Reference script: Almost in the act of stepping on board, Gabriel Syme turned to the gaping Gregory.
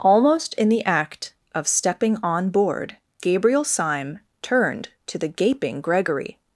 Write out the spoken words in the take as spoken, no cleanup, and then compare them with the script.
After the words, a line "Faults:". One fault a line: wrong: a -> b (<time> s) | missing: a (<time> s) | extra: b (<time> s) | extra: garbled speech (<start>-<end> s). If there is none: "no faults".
Almost in the act of stepping on board, Gabriel Syme turned to the gaping Gregory.
Faults:
no faults